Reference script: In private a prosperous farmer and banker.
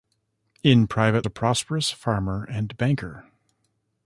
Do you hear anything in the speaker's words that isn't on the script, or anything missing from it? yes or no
no